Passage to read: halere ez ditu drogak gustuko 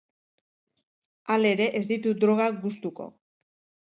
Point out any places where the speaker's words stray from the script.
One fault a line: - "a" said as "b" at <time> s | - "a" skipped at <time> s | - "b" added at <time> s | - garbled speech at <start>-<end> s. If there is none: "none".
none